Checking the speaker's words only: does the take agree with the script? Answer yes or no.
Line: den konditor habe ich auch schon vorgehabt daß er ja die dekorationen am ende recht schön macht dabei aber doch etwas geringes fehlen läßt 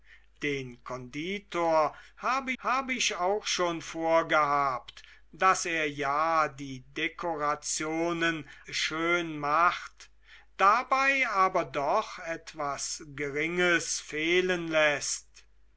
no